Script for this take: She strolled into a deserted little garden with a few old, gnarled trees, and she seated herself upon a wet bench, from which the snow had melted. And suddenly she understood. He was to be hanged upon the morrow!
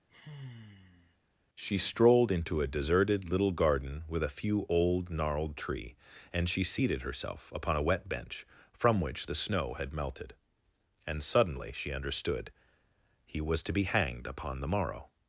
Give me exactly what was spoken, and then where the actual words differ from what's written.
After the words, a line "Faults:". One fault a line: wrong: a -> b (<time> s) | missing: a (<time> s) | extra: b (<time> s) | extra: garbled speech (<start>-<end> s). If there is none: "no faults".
She strolled into a deserted little garden with a few old, gnarled tree, and she seated herself upon a wet bench, from which the snow had melted. And suddenly she understood. He was to be hanged upon the morrow!
Faults:
wrong: trees -> tree (5.6 s)